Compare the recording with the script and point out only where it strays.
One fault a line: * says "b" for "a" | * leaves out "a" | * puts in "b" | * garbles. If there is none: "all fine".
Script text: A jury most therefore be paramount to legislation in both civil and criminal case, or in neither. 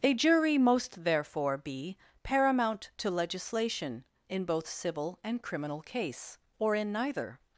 all fine